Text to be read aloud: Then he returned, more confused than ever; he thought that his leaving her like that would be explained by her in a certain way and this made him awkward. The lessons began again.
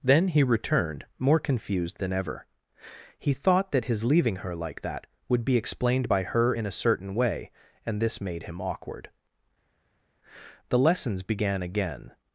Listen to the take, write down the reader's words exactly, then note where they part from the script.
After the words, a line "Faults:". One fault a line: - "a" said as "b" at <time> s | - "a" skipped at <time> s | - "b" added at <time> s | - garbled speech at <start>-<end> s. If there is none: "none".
Then he returned, more confused than ever; he thought that his leaving her like that would be explained by her in a certain way and this made him awkward. The lessons began again.
Faults:
none